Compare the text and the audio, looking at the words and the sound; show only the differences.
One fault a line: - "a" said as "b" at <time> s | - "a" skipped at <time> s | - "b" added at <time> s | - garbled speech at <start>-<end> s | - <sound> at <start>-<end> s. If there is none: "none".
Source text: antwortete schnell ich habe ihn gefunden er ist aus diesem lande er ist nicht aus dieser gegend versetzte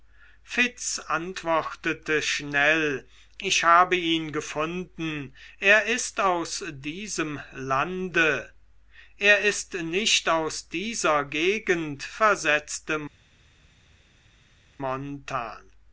none